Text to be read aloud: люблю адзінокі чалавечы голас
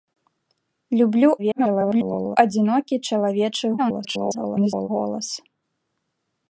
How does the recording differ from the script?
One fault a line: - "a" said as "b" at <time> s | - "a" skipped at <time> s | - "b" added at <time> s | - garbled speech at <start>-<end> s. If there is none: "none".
- garbled speech at 1.4-2.4 s
- garbled speech at 3.8-4.9 s